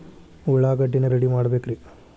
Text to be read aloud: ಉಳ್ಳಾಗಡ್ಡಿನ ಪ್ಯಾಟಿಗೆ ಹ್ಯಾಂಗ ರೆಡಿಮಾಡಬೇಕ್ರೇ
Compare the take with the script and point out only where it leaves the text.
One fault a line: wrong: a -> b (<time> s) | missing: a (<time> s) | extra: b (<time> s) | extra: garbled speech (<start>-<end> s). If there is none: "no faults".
missing: ಪ್ಯಾಟಿಗೆ ಹ್ಯಾಂಗ (1.1 s)